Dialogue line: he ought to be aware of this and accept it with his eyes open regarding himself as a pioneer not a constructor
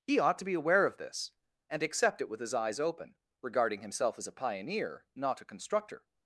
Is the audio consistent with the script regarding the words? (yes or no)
yes